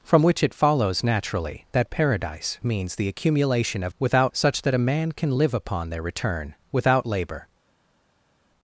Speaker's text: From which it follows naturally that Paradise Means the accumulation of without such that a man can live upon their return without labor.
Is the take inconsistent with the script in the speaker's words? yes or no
no